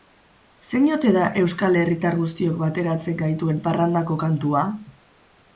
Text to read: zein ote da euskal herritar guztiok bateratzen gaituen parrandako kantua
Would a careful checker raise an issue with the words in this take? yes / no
no